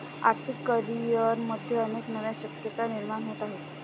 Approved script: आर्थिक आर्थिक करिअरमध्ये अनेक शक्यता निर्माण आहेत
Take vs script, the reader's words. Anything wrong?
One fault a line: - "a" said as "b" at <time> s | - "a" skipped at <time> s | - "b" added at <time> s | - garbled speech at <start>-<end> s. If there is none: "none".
- "आर्थिक" skipped at 0.6 s
- "नव्या" added at 2.1 s
- "होत" added at 3.2 s